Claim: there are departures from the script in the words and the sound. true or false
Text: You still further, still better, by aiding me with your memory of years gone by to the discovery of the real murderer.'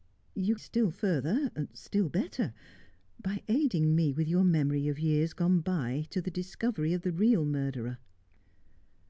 false